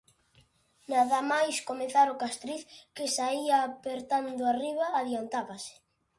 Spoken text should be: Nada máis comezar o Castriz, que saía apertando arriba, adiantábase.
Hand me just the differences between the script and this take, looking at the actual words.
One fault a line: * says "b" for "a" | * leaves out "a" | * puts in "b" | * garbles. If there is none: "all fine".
all fine